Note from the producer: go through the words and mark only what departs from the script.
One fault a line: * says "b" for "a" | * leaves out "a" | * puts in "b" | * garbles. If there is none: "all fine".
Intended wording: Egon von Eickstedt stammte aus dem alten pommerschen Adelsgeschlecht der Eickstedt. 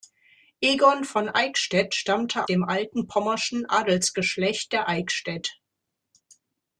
* leaves out "aus"